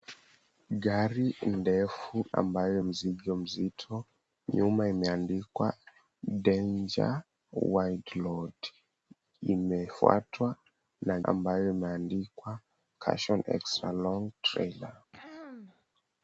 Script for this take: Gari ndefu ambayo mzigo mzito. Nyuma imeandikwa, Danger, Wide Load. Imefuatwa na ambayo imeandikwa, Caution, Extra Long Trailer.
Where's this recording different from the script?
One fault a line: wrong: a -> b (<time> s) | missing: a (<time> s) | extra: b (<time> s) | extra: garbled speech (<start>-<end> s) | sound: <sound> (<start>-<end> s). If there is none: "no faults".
sound: throat clearing (15.1-15.9 s)